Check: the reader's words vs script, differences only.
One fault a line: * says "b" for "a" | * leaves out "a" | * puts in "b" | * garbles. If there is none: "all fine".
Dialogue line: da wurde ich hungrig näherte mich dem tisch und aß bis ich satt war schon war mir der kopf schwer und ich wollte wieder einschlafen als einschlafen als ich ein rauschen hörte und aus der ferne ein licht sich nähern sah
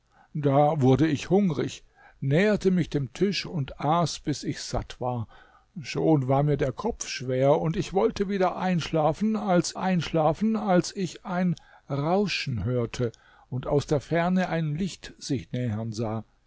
all fine